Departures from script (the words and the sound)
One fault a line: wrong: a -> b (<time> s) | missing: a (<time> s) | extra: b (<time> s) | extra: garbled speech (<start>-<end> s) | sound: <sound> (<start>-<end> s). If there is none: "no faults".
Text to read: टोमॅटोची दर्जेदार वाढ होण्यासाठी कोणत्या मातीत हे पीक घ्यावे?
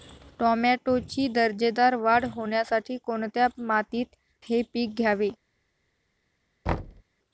sound: thud (6.7-7.0 s)